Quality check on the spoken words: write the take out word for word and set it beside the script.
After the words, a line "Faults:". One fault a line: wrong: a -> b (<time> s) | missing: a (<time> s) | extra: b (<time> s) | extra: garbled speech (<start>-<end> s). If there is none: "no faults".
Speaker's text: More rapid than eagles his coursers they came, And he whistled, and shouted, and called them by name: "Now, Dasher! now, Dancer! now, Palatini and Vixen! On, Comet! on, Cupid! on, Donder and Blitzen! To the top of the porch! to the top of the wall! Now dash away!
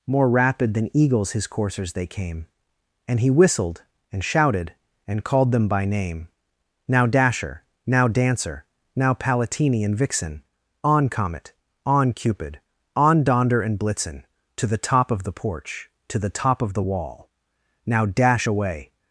More rapid than eagles his coursers they came, And he whistled, and shouted, and called them by name: "Now, Dasher! now, Dancer! now, Palatini and Vixen! On, Comet! on, Cupid! on, Donder and Blitzen! To the top of the porch! to the top of the wall! Now dash away!
Faults:
no faults